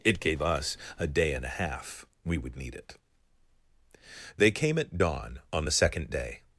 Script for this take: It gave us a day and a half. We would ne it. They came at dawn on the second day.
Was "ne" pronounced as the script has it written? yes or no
no